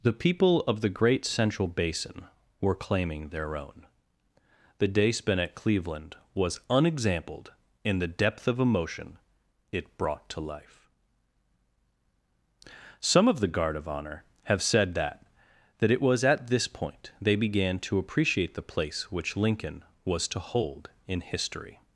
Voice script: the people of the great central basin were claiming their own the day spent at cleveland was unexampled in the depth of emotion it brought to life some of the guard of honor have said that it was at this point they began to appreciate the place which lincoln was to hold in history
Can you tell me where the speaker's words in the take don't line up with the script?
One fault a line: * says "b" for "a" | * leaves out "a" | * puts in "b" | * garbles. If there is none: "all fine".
* puts in "that"